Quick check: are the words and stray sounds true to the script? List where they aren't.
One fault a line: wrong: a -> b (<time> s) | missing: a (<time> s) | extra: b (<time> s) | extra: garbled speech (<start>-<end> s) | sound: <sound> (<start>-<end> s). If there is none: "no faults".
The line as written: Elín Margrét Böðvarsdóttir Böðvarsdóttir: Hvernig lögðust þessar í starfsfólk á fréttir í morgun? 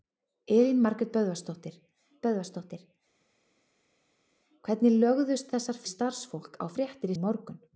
no faults